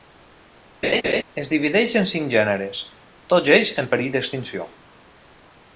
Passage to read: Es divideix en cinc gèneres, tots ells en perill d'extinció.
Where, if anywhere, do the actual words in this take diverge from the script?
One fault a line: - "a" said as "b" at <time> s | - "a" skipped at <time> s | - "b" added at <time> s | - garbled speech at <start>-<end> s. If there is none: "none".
none